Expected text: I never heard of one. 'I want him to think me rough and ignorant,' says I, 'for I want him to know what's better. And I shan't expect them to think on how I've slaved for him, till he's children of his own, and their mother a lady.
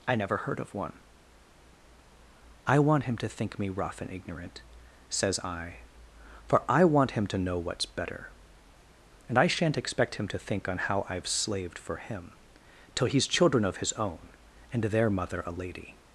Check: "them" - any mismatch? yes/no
yes